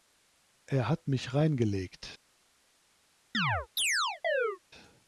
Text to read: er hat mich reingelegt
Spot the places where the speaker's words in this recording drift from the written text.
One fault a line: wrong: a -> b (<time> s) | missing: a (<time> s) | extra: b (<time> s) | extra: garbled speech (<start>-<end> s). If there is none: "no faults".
no faults